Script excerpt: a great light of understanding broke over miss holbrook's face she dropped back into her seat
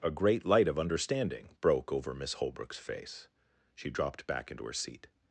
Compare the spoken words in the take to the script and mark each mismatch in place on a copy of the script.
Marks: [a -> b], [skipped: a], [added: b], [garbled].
a great light of understanding broke over miss holbrook's face she dropped back into her seat